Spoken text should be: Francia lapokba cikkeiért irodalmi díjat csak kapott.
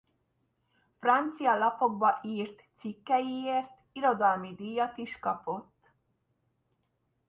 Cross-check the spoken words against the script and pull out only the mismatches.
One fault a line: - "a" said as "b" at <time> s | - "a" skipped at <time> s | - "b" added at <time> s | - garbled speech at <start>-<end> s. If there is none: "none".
- "írt" added at 2.2 s
- "csak" said as "is" at 5.0 s